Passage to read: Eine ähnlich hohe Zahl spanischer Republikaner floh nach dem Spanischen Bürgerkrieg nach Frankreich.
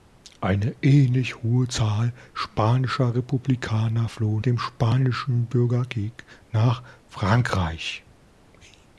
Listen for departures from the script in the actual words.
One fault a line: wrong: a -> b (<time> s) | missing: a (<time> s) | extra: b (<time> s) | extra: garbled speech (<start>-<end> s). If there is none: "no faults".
missing: nach (4.4 s)